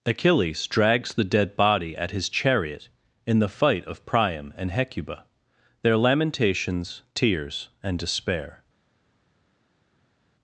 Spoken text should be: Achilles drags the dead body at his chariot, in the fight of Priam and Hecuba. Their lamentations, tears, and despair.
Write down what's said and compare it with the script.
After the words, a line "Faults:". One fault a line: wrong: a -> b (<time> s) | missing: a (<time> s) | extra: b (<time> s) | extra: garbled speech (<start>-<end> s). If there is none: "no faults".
Achilles drags the dead body at his chariot, in the fight of Priam and Hecuba. Their lamentations, tears, and despair.
Faults:
no faults